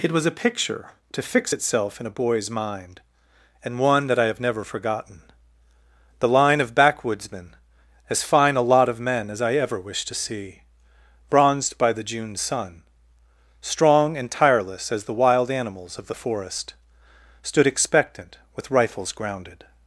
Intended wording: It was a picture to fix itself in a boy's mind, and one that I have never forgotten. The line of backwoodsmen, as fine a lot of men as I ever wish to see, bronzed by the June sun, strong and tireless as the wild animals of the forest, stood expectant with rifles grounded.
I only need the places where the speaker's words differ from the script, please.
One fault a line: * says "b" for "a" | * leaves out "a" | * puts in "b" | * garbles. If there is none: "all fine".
all fine